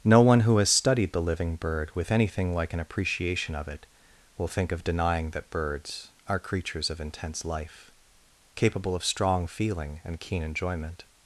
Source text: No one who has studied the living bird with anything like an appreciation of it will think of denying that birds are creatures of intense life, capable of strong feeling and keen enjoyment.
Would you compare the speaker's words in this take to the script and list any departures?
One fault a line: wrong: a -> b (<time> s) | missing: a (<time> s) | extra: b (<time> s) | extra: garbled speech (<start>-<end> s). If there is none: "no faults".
no faults